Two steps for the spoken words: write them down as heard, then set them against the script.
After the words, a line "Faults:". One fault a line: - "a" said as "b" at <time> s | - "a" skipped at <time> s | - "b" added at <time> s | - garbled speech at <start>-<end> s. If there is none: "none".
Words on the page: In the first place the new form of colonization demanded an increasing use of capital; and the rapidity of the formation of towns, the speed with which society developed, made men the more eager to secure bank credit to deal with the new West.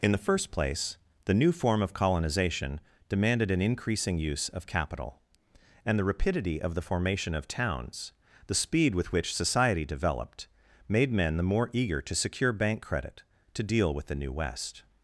In the first place the new form of colonization demanded an increasing use of capital; and the rapidity of the formation of towns, the speed with which society developed, made men the more eager to secure bank credit to deal with the new West.
Faults:
none